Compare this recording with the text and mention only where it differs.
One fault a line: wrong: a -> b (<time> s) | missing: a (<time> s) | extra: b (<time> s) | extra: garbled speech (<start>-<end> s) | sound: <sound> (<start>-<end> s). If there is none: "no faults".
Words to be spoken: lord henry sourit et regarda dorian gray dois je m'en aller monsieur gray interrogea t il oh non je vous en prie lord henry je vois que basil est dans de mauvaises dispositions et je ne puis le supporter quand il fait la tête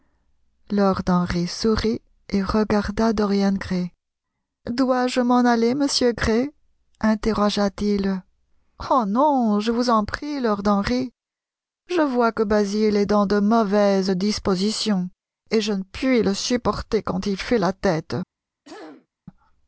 sound: throat clearing (18.7-19.1 s)